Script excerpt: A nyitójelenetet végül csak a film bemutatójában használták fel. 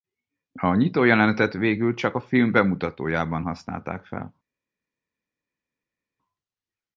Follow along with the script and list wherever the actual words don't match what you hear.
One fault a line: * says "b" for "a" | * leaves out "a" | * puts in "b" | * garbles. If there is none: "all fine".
all fine